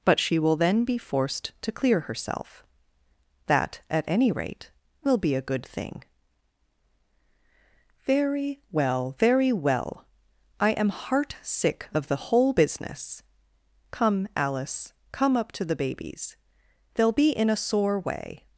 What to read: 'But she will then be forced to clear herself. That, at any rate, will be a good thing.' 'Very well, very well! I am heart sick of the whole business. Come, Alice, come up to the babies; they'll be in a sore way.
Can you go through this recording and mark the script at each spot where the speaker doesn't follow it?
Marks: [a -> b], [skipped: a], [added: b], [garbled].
'But she will then be forced to clear herself. That, at any rate, will be a good thing.' 'Very well, very well! I am heart sick of the whole business. Come, Alice, come up to the babies; they'll be in a sore way.